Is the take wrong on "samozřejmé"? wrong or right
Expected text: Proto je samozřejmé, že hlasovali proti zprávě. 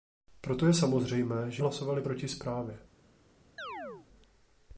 right